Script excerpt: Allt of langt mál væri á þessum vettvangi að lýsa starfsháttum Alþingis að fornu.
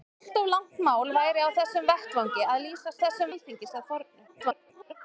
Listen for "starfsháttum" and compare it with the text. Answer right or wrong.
wrong